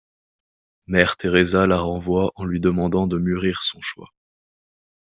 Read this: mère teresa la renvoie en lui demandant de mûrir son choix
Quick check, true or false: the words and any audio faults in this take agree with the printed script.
true